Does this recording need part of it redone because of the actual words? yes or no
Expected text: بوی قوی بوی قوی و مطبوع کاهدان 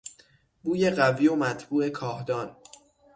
yes